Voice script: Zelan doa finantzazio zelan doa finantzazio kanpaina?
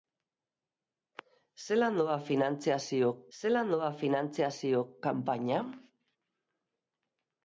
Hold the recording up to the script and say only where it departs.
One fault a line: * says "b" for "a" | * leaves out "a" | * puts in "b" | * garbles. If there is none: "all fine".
all fine